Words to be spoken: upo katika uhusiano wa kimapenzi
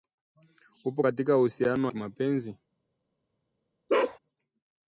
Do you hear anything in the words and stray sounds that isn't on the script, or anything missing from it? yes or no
yes